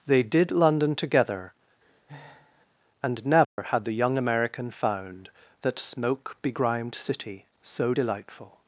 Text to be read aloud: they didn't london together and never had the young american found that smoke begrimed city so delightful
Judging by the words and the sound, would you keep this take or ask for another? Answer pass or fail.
fail